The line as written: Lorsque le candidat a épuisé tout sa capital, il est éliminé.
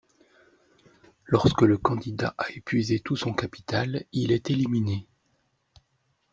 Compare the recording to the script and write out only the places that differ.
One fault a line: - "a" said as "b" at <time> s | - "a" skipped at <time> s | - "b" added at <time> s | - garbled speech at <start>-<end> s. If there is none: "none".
- "sa" said as "son" at 3.1 s